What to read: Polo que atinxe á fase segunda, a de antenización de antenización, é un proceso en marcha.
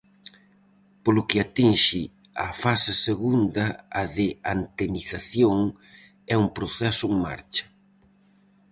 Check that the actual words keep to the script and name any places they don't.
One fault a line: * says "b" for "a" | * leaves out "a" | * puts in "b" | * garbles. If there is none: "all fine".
* leaves out "de antenización"